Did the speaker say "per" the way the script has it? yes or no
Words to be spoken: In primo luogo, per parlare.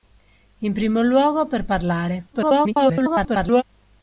yes